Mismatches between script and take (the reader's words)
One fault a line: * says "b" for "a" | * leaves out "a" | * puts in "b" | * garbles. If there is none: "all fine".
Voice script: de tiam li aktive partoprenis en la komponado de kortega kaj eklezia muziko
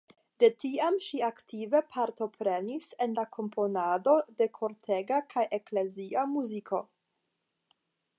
* says "ŝi" for "li"